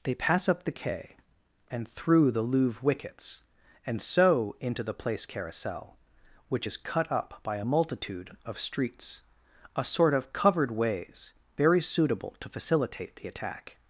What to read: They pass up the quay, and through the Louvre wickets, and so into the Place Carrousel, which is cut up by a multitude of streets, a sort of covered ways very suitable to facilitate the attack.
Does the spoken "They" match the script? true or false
true